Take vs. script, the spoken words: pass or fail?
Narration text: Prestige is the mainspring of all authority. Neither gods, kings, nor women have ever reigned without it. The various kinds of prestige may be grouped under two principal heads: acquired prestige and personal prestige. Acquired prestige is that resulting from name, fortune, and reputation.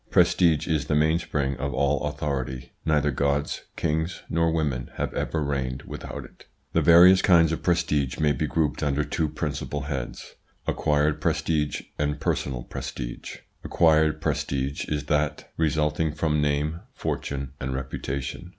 pass